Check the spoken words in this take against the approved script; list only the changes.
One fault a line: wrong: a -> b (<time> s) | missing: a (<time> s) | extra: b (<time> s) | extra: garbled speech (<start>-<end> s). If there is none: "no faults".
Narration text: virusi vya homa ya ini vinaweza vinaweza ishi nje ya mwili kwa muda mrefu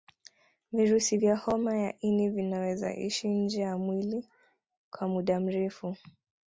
missing: vinaweza (2.9 s)